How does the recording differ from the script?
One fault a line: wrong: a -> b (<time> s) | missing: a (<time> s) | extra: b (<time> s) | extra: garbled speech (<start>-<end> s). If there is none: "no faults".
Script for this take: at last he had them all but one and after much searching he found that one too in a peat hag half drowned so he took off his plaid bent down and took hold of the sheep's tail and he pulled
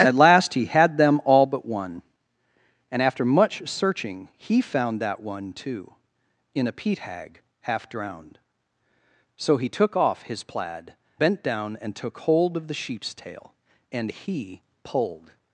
no faults